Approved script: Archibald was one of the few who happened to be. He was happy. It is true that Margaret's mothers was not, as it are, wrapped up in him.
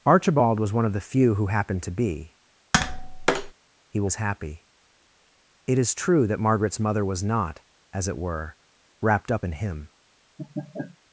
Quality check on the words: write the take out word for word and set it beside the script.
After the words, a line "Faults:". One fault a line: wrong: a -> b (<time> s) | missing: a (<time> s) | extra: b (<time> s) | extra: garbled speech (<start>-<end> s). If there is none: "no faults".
Archibald was one of the few who happened to be. He was happy. It is true that Margaret's mother was not, as it were, wrapped up in him.
Faults:
wrong: mothers -> mother (6.8 s)
wrong: are -> were (8.2 s)